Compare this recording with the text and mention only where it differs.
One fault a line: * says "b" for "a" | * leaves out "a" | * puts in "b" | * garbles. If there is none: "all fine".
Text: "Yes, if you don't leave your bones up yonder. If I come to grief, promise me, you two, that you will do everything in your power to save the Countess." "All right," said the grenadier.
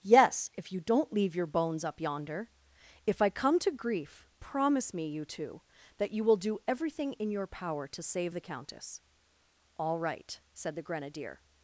all fine